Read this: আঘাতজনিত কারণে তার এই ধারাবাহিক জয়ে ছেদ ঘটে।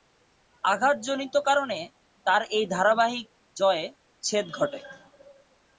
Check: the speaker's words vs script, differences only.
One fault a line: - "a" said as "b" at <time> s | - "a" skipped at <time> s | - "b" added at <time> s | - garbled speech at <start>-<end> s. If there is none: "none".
none